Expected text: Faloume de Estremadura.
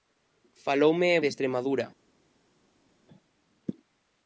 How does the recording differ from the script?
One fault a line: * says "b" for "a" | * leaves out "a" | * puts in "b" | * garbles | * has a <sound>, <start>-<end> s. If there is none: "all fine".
all fine